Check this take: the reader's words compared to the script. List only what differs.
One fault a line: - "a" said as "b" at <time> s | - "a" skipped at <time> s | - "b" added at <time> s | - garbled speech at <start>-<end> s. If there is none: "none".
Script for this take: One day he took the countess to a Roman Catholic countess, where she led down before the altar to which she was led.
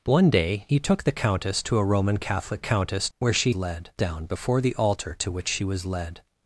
none